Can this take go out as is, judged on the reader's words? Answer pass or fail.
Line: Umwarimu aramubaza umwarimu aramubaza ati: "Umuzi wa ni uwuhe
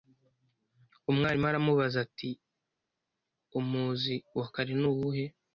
fail